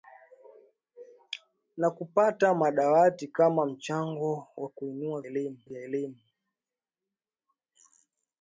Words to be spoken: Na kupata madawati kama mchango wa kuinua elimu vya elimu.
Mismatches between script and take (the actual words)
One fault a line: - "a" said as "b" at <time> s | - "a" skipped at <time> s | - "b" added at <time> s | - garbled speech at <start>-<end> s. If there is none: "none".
none